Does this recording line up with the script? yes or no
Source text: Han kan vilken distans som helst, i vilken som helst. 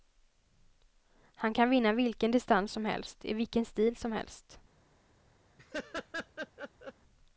no